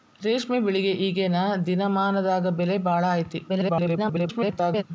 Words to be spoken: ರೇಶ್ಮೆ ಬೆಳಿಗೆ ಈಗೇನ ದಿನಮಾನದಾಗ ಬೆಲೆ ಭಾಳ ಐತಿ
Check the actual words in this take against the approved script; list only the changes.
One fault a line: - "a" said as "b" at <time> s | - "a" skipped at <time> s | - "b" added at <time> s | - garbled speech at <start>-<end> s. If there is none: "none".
- garbled speech at 3.5-4.8 s